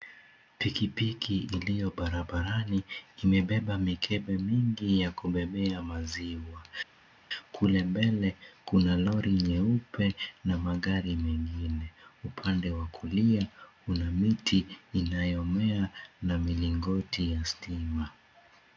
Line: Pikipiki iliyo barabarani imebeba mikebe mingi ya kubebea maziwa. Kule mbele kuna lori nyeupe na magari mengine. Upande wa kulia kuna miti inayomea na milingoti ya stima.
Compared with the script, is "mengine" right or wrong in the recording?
right